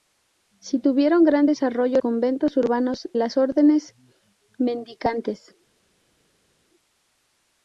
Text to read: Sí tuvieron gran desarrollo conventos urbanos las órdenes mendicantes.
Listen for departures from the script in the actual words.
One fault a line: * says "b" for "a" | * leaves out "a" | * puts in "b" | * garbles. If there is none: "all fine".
all fine